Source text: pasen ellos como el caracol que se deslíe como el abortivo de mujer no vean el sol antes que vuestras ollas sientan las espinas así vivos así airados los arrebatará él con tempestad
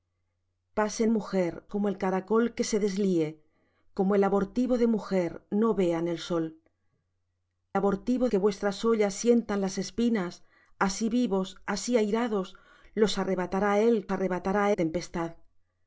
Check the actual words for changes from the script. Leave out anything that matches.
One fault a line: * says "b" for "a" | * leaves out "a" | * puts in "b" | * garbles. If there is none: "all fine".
* says "mujer" for "ellos"
* says "abortivo" for "antes"
* says "arrebatará" for "con"